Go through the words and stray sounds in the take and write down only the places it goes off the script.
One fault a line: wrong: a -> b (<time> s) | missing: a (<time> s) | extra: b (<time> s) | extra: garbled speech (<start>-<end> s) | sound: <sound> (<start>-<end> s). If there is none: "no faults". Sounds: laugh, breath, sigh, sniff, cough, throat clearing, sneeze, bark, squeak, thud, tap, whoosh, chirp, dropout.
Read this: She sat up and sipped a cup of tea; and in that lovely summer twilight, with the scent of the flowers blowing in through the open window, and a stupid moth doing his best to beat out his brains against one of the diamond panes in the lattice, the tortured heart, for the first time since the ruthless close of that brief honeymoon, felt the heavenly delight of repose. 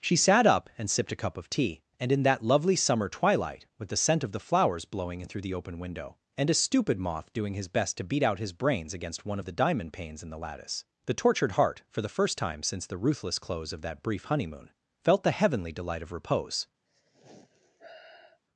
sound: sigh (16.9-18.4 s)